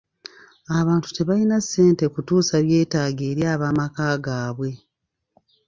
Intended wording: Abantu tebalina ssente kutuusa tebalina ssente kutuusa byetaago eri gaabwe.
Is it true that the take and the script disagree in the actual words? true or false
true